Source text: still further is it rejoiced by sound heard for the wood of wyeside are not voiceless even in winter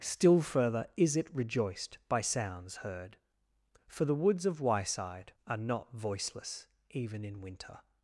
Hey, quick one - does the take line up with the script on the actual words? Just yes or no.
no